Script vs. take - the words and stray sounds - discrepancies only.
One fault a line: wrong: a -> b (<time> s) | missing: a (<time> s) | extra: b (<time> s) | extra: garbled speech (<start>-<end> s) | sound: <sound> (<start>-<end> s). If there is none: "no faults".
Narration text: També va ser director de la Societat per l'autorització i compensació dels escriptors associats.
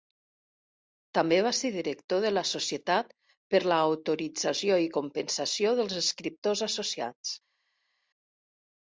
no faults